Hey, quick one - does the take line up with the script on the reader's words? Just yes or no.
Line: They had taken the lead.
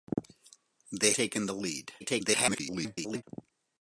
no